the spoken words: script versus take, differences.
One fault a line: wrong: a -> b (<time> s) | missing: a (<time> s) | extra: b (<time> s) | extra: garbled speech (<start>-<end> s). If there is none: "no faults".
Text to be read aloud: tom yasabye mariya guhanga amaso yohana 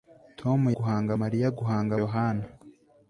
wrong: yasabye -> guhanga (0.8 s)
missing: amaso (1.9 s)